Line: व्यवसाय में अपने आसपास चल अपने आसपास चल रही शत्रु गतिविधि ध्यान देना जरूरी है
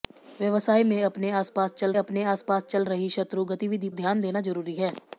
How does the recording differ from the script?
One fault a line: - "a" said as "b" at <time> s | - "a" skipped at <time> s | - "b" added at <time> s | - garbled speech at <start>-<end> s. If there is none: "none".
none